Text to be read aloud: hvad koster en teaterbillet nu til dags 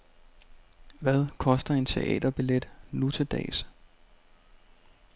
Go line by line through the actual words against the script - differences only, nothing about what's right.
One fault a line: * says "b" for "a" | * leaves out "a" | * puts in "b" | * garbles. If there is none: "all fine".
all fine